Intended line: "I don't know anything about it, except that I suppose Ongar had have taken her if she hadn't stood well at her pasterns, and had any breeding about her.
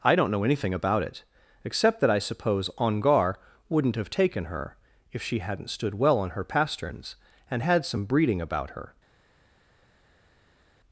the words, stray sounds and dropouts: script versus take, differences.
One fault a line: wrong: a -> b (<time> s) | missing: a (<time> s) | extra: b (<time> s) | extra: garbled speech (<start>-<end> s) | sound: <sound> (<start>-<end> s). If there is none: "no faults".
wrong: had -> wouldn't (3.7 s)
wrong: at -> on (6.2 s)
wrong: any -> some (7.8 s)